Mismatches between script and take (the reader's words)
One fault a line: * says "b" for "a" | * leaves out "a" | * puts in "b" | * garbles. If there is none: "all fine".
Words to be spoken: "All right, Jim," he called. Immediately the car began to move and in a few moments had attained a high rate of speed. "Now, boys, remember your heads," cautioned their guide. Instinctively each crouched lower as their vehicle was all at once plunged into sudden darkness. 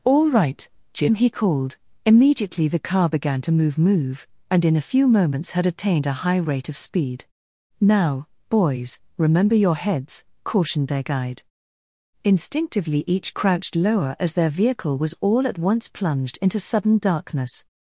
* puts in "move"